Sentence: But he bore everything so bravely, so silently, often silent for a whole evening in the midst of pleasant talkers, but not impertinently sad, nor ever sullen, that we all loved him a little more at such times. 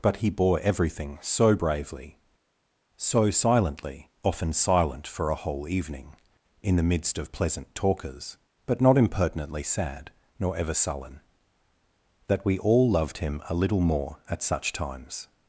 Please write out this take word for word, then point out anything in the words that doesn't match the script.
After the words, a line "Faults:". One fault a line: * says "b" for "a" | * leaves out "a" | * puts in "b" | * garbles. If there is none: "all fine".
But he bore everything so bravely, so silently, often silent for a whole evening in the midst of pleasant talkers, but not impertinently sad, nor ever sullen, that we all loved him a little more at such times.
Faults:
all fine